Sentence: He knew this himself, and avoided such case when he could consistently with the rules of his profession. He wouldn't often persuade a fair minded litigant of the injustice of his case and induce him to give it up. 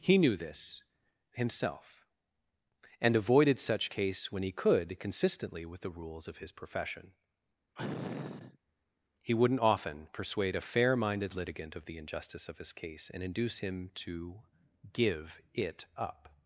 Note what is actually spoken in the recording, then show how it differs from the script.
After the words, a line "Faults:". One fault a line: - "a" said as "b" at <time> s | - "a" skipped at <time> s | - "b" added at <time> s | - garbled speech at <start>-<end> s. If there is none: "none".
He knew this himself, and avoided such case when he could consistently with the rules of his profession. He wouldn't often persuade a fair minded litigant of the injustice of his case and induce him to give it up.
Faults:
none